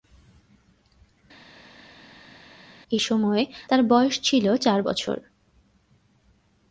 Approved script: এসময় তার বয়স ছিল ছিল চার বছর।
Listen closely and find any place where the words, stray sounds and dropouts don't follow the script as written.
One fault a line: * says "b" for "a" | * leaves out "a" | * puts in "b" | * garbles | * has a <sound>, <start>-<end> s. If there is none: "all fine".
* leaves out "ছিল"